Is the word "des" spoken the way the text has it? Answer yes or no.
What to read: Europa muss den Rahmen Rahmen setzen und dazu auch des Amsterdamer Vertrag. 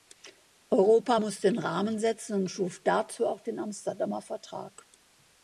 no